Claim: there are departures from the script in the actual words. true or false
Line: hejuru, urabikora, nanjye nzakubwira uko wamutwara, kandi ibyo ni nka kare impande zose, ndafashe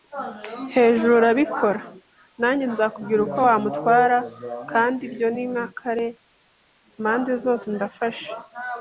false